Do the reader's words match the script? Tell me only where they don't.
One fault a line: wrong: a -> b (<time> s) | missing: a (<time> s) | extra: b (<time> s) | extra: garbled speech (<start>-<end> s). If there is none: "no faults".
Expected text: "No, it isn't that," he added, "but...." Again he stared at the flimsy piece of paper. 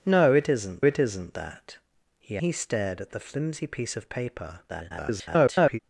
extra: it isn't (0.8 s)
missing: added but Again (2.4 s)
extra: garbled speech (4.7-5.8 s)